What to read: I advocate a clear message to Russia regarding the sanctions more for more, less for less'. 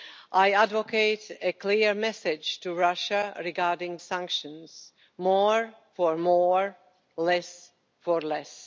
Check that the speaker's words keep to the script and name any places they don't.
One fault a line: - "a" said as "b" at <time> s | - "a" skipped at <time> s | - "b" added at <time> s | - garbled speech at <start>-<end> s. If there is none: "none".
- "the" skipped at 4.0 s